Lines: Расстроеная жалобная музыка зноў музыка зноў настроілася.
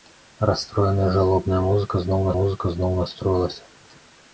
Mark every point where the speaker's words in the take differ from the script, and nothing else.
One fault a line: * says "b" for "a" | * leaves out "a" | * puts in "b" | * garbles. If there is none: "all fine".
all fine